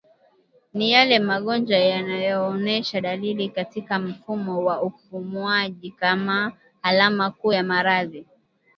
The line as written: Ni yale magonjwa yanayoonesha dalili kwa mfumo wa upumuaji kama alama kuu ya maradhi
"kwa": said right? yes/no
no